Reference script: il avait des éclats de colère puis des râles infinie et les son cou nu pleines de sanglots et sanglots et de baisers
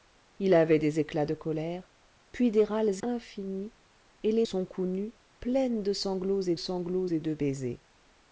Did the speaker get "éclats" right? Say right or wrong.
right